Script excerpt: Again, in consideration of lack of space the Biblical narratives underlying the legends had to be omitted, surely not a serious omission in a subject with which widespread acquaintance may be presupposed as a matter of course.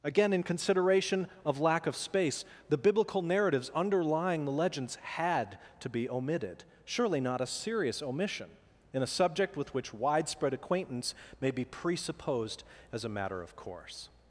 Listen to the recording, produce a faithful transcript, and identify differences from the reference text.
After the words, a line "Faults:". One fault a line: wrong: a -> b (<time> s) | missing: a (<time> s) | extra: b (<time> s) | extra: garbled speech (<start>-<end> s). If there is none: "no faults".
Again, in consideration of lack of space the Biblical narratives underlying the legends had to be omitted, surely not a serious omission in a subject with which widespread acquaintance may be presupposed as a matter of course.
Faults:
no faults